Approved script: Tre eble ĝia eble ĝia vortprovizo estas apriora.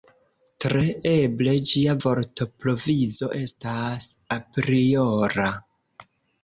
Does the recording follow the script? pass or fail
fail